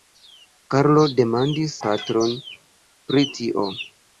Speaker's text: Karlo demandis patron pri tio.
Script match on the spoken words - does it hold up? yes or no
yes